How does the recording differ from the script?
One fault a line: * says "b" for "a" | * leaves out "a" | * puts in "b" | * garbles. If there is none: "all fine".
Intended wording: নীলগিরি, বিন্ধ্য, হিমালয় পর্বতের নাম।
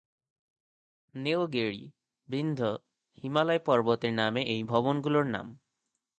* puts in "নামে এই ভবনগুলোর"